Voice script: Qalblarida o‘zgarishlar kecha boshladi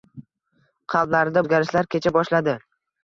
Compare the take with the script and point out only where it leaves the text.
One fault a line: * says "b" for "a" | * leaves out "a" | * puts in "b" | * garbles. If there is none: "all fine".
all fine